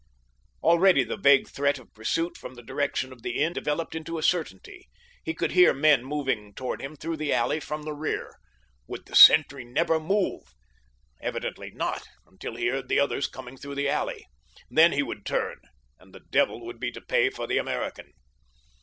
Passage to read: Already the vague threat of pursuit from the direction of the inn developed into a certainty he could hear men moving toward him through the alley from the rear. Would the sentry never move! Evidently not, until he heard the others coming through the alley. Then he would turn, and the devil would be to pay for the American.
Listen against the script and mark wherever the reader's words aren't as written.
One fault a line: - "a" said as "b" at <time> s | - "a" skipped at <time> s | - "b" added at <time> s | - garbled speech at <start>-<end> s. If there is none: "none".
none